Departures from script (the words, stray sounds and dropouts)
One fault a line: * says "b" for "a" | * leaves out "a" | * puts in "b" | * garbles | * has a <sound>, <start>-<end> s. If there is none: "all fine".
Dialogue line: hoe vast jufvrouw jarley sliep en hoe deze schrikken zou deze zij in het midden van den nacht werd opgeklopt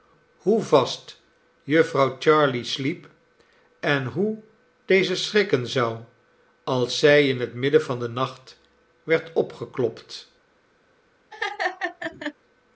* says "als" for "deze"
* has a laugh, 11.3-12.3 s